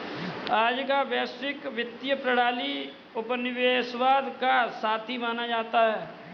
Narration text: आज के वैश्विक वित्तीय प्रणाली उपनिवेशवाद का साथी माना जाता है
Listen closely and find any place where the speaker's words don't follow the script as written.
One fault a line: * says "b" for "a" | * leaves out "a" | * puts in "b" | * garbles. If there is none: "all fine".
* says "का" for "के"